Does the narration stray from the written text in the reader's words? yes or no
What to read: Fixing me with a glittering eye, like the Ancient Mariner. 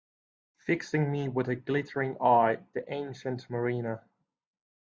yes